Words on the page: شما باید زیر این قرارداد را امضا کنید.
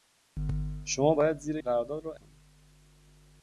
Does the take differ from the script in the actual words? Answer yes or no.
yes